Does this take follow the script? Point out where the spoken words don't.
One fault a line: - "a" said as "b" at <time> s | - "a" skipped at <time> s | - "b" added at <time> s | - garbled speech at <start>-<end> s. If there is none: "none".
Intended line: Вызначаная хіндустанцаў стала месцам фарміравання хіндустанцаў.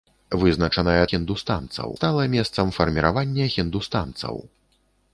none